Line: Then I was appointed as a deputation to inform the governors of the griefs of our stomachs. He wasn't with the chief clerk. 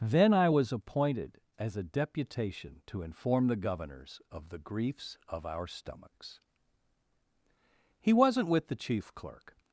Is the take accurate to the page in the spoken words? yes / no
yes